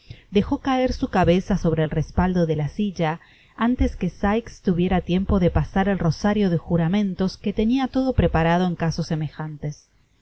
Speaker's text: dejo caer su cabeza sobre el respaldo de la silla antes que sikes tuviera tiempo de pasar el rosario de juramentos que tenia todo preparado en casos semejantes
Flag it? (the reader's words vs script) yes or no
no